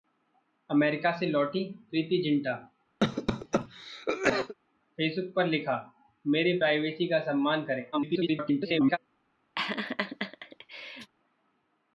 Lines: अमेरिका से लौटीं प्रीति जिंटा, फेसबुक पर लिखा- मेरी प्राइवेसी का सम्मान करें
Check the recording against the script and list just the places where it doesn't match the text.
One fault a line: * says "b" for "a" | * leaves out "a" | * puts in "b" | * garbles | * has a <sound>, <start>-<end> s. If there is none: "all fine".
* has a cough, 3.0-4.5 s
* garbles
* has a laugh, 9.6-11.1 s